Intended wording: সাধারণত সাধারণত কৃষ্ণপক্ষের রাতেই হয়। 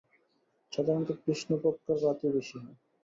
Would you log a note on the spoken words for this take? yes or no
yes